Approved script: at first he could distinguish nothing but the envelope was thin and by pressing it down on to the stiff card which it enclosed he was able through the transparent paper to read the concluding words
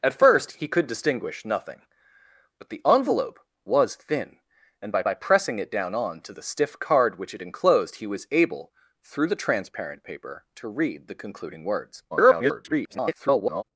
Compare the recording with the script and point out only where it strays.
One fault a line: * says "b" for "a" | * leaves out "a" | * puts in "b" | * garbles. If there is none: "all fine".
* puts in "by"
* garbles